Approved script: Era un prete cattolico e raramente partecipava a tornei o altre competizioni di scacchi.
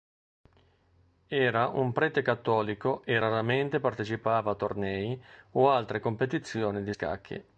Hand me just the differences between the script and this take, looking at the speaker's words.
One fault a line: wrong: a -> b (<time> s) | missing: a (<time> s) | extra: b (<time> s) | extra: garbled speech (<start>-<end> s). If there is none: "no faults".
no faults